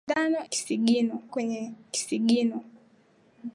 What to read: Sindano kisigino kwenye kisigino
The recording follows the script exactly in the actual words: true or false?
true